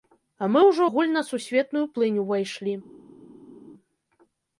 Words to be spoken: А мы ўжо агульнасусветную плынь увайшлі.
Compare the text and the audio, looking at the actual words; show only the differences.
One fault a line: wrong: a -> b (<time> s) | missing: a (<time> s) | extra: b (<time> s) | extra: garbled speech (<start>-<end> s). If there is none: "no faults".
no faults